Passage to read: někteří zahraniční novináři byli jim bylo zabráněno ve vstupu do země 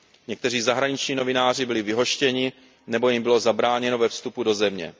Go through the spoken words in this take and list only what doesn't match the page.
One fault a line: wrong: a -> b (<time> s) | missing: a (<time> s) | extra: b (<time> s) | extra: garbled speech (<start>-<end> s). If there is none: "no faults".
extra: vyhoštěni nebo (1.8 s)